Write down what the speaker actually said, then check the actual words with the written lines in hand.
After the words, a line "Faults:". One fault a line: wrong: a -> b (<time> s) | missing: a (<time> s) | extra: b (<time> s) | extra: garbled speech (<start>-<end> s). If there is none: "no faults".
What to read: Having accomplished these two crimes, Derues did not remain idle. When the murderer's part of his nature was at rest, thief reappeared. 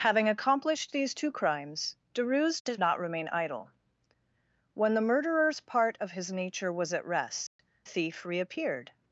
Having accomplished these two crimes, Derues did not remain idle. When the murderer's part of his nature was at rest, thief reappeared.
Faults:
no faults